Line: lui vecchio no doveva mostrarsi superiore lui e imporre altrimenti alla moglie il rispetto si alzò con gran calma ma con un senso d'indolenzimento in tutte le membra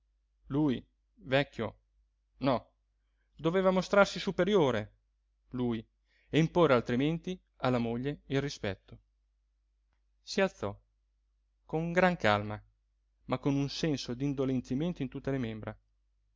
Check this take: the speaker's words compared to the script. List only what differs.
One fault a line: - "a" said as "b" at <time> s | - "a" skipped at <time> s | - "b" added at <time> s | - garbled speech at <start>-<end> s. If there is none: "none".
none